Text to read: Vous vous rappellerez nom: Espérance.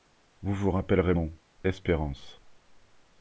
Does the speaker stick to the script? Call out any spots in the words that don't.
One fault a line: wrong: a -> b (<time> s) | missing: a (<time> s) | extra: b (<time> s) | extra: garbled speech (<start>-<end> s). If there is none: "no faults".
no faults